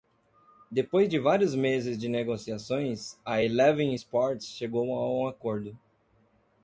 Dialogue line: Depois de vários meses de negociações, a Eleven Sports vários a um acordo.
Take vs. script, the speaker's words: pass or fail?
fail